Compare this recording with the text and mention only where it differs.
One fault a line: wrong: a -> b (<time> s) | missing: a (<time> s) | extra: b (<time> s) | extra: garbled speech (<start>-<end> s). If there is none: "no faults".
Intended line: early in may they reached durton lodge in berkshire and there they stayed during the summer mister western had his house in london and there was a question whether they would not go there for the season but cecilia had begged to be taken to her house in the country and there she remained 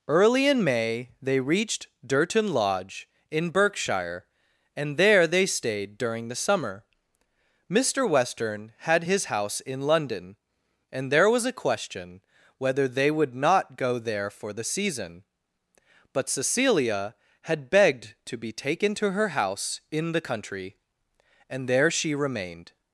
no faults